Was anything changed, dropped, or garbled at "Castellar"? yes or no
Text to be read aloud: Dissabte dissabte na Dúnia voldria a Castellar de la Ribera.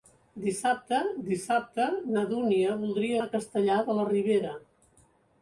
no